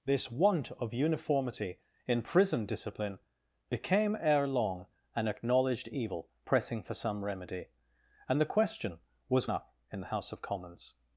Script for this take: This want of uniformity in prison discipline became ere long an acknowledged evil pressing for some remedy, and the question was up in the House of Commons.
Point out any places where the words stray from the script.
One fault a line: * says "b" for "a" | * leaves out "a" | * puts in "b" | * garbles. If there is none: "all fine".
all fine